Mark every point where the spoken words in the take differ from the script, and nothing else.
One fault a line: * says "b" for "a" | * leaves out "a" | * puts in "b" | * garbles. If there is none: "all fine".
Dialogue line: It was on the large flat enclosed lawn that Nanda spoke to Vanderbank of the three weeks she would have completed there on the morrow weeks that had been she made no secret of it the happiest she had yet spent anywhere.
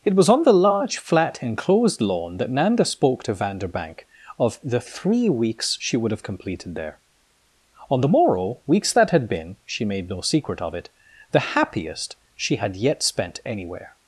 all fine